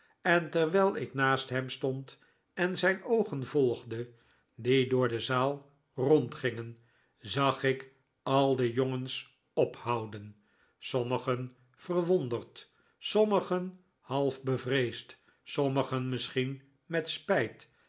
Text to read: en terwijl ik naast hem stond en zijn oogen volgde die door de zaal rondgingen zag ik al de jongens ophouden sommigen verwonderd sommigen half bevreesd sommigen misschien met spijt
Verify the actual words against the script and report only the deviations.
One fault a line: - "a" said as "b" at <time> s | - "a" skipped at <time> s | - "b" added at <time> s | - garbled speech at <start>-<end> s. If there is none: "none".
none